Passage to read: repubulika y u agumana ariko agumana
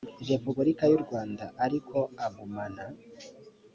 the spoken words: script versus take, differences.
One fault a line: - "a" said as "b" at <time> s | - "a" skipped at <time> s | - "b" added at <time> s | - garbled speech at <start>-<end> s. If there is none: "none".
- "agumana" said as "rwanda" at 1.0 s